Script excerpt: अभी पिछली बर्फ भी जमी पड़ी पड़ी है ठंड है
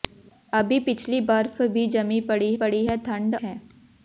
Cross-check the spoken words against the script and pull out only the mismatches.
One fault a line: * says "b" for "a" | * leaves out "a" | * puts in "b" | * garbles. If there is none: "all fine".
all fine